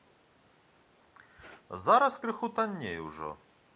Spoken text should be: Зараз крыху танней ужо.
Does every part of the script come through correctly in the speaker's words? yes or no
yes